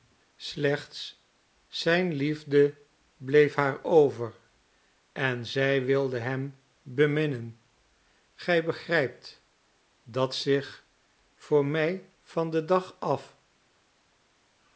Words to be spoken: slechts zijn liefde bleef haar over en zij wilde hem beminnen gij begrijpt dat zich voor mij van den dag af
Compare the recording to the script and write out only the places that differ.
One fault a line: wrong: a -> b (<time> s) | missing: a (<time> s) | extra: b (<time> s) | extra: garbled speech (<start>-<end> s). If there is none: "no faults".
no faults